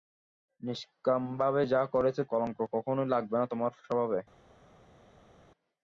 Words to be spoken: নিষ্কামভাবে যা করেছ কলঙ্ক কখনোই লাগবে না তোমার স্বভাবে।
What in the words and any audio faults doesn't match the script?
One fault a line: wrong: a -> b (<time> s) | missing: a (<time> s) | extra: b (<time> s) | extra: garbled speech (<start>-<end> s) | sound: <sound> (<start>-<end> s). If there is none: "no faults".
no faults